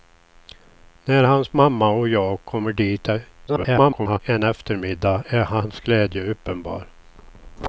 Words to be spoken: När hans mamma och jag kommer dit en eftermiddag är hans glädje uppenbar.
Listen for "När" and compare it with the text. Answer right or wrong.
right